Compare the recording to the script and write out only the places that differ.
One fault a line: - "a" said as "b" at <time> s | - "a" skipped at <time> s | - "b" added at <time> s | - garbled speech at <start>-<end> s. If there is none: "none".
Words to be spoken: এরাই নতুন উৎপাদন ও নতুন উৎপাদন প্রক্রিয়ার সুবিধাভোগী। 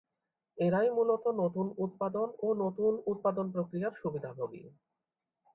- "মূলত" added at 0.9 s